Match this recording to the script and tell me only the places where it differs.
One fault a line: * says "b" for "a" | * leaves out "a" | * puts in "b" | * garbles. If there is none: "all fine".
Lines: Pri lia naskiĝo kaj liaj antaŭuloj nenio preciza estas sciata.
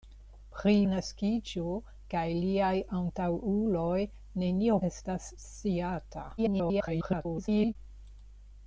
* leaves out "lia"
* leaves out "preciza"
* garbles